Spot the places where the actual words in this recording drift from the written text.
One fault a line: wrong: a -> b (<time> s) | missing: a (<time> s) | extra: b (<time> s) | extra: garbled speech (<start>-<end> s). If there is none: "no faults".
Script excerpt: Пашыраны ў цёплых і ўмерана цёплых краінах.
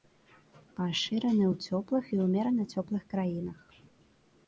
no faults